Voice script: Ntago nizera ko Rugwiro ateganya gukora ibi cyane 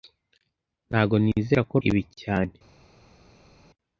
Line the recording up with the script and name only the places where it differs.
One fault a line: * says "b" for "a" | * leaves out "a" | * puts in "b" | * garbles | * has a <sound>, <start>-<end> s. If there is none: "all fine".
* leaves out "Rugwiro ateganya gukora"